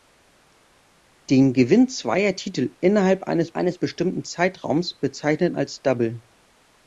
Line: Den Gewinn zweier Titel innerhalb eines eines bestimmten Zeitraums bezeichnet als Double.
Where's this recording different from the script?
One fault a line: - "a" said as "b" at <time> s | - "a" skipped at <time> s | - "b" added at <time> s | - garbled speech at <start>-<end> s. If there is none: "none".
none